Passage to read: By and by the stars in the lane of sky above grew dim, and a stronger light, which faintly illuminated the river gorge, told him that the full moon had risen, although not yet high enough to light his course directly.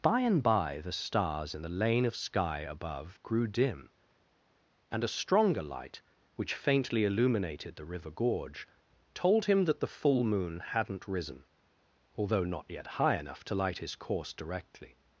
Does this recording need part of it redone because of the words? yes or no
yes